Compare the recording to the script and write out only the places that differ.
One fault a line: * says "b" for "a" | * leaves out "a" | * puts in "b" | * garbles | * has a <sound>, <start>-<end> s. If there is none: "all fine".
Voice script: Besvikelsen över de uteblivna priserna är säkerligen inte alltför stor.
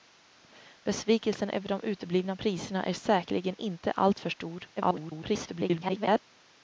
* garbles